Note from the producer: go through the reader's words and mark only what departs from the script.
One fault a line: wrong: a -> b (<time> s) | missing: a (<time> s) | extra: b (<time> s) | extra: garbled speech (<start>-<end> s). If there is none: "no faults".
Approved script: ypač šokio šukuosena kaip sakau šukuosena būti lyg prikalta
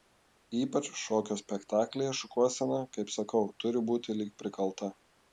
extra: spektaklyje (1.4 s)
wrong: šukuosena -> turi (3.6 s)